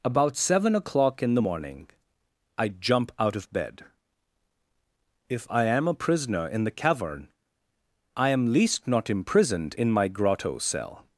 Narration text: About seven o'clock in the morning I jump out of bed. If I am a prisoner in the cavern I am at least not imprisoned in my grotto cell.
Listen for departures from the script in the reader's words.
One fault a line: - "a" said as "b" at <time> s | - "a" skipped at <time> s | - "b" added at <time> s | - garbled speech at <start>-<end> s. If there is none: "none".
- "at" skipped at 8.5 s